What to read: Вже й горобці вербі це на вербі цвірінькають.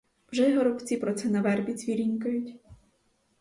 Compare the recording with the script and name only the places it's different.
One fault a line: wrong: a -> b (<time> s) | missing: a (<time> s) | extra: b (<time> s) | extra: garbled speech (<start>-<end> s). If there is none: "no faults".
wrong: вербі -> про (0.9 s)